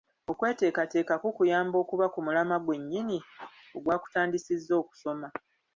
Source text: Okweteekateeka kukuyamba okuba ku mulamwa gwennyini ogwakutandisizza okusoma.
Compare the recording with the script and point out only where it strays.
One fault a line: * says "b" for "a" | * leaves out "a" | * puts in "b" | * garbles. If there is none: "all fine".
all fine